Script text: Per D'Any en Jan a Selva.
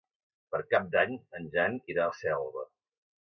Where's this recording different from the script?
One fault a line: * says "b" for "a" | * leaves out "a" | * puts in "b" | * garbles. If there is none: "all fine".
* puts in "Cap"
* puts in "irà"